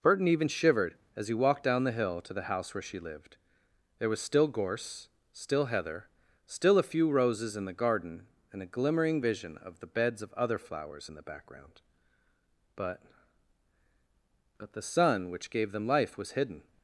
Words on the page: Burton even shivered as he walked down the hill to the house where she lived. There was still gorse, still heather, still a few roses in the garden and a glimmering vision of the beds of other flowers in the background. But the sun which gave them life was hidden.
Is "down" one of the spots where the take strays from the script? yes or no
no